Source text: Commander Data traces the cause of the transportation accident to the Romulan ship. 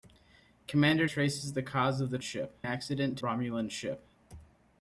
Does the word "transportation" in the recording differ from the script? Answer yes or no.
yes